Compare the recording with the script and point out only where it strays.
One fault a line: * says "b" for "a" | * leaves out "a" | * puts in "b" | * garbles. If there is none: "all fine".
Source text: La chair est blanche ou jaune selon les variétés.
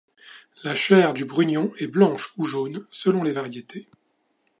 * puts in "du brugnon"